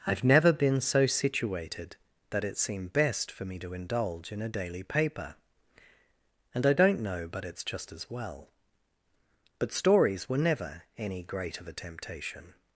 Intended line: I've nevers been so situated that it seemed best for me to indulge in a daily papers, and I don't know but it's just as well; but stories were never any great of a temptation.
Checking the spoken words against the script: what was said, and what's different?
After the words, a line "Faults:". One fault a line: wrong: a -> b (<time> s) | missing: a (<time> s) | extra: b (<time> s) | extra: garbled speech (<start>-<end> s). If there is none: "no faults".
I've never been so situated that it seemed best for me to indulge in a daily paper, and I don't know but it's just as well; but stories were never any great of a temptation.
Faults:
wrong: nevers -> never (0.2 s)
wrong: papers -> paper (4.8 s)